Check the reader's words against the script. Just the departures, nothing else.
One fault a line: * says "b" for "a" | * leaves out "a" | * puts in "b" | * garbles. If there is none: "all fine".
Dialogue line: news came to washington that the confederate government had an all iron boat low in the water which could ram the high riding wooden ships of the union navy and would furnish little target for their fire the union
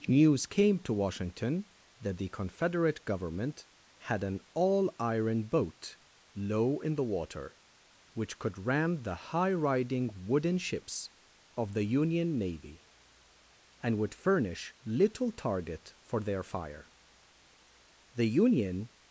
all fine